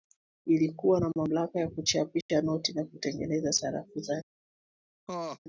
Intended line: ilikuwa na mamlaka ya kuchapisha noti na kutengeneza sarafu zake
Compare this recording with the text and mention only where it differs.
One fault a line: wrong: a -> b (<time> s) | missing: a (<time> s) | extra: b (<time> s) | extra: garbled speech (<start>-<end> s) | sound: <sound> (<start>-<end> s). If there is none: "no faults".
sound: dropout (2.2-2.3 s)
sound: laugh (5.1-5.4 s)